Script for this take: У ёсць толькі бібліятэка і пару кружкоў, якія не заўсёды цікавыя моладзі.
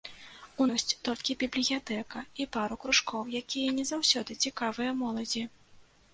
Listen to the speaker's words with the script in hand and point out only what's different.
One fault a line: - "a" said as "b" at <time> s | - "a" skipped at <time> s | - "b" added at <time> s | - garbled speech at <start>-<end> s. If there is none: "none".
none